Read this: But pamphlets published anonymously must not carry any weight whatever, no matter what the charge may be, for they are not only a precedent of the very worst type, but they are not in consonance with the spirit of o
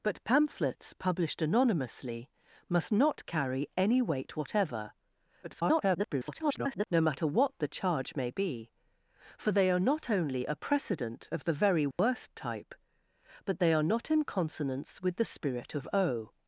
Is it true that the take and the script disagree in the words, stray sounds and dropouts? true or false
true